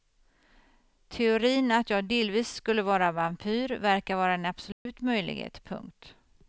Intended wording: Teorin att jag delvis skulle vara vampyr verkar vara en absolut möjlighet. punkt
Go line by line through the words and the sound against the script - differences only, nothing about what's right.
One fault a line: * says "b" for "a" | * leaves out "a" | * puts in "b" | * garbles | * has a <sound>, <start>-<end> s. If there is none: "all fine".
* has a dropout, 4.7-4.9 s